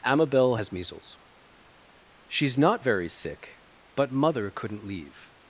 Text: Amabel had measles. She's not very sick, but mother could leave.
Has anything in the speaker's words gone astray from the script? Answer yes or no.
yes